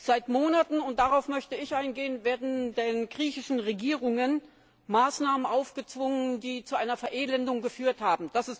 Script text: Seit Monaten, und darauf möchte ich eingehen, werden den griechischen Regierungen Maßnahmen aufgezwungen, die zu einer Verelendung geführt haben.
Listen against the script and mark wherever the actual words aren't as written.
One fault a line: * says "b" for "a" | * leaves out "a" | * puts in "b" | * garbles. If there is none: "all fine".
all fine